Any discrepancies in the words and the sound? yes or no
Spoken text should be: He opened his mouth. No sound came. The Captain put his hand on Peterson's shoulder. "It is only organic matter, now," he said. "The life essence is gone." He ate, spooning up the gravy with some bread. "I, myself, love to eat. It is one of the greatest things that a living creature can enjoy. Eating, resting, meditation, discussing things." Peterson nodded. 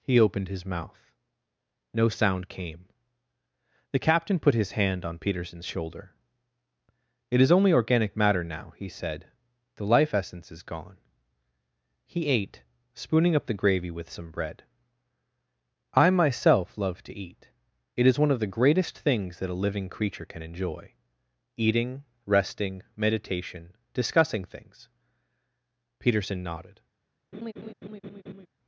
yes